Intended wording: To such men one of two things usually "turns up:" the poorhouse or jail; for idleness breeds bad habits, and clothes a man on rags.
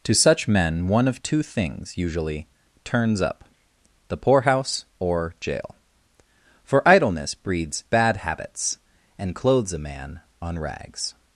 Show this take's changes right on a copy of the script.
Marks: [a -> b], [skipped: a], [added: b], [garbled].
To such men one of two things usually "turns up:" the poorhouse or jail; for idleness breeds bad habits, and clothes a man on rags.